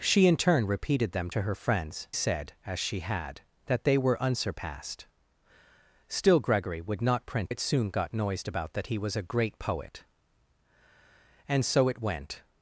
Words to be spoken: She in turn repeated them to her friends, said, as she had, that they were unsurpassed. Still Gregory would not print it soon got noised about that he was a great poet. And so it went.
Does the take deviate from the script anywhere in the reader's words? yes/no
no